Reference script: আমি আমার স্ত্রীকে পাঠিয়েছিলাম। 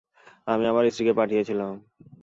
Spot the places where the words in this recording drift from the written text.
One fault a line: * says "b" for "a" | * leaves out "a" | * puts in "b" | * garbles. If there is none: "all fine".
all fine